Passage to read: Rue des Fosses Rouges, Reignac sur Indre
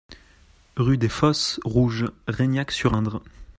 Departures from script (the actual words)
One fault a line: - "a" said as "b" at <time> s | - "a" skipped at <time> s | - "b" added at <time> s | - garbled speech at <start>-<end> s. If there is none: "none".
none